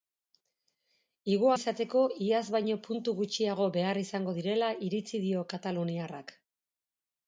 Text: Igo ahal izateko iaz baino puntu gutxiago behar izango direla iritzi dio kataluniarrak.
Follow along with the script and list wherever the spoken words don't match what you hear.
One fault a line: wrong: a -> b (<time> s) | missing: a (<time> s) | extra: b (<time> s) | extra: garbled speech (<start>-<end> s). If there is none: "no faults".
missing: ahal (1.5 s)